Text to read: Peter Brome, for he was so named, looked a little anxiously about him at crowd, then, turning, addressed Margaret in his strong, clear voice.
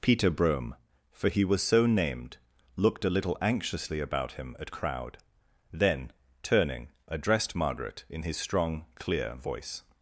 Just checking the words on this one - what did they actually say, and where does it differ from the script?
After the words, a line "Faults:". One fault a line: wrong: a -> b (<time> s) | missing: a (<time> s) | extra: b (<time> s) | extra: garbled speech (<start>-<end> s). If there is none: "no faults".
Peter Brome, for he was so named, looked a little anxiously about him at crowd, then, turning, addressed Margaret in his strong, clear voice.
Faults:
no faults